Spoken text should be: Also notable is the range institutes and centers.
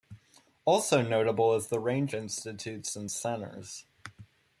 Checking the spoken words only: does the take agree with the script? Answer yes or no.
yes